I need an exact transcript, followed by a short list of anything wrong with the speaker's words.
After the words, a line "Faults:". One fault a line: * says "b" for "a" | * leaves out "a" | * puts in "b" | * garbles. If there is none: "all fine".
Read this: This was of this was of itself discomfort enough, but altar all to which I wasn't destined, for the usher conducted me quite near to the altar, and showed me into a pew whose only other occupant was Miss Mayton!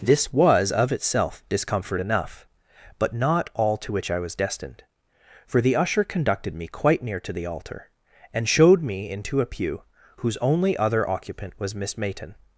This was of itself discomfort enough, but not all to which I was destined, for the usher conducted me quite near to the altar, and showed me into a pew whose only other occupant was Miss Mayton!
Faults:
* leaves out "this was of"
* says "not" for "altar"
* says "was" for "wasn't"